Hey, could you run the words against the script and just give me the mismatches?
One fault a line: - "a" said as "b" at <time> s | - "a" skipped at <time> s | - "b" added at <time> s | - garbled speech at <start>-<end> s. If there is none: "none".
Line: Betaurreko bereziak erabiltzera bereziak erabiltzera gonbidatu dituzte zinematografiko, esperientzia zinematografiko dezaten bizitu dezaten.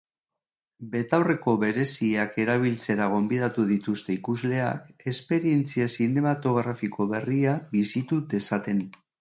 - "bereziak erabiltzera" skipped at 3.1 s
- "zinematografiko" said as "ikusleak" at 4.2 s
- "dezaten" said as "berria" at 7.2 s